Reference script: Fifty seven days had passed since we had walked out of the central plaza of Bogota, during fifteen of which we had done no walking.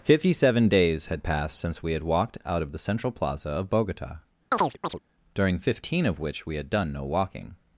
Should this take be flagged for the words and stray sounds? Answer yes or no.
yes